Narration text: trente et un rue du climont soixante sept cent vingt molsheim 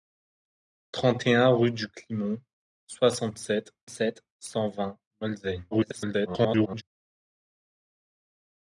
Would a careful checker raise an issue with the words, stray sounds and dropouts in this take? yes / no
yes